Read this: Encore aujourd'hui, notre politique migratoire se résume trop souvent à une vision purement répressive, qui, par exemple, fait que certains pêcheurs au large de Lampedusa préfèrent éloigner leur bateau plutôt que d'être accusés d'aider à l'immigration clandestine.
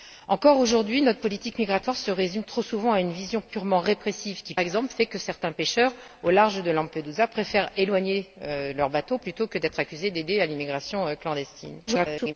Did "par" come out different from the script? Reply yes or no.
yes